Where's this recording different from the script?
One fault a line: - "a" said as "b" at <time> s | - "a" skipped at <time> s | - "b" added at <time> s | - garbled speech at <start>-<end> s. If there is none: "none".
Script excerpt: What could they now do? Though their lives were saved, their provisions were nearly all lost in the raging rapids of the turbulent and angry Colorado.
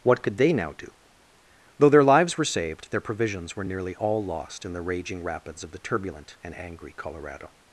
none